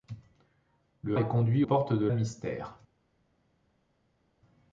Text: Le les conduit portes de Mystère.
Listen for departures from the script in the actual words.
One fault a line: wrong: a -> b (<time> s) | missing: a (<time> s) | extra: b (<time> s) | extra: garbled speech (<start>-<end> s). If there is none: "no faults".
no faults